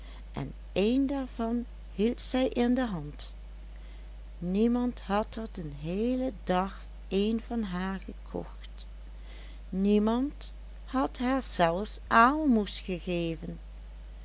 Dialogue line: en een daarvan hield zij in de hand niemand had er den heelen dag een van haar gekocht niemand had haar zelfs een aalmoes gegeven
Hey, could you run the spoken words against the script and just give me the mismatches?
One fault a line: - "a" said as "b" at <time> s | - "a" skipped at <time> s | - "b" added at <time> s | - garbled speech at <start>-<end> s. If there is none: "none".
- "een" skipped at 12.0 s